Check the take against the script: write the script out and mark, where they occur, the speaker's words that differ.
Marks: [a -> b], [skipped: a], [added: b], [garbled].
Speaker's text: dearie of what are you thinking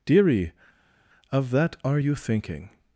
dearie of [what -> that] are you thinking